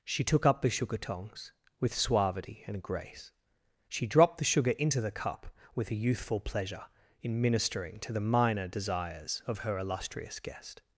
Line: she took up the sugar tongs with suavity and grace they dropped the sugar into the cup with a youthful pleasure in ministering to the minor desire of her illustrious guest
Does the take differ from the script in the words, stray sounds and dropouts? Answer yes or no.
yes